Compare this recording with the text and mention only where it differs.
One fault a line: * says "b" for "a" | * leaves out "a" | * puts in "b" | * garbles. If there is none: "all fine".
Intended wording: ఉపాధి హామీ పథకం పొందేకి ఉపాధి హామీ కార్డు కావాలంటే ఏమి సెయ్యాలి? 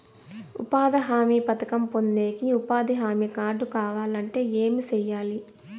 all fine